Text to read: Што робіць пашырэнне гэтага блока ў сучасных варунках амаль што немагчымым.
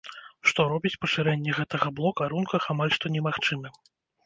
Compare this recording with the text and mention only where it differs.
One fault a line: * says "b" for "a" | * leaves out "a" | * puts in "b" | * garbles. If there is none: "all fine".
* leaves out "ў сучасных"